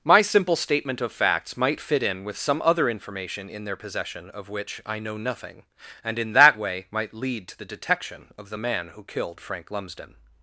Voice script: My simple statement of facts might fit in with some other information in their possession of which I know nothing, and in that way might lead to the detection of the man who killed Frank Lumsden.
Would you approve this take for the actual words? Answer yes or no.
yes